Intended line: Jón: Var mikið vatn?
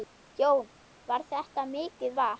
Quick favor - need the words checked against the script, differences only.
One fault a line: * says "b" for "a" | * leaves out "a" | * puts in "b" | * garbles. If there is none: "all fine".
* puts in "þetta"